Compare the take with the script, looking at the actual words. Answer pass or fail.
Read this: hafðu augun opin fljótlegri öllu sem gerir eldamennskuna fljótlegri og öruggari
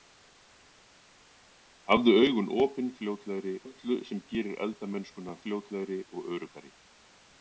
pass